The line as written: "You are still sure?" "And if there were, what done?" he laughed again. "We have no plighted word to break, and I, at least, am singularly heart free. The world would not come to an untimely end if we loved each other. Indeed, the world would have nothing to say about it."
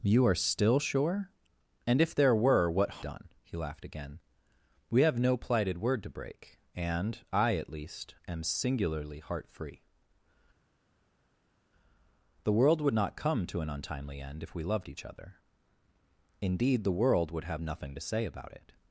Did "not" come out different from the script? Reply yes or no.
no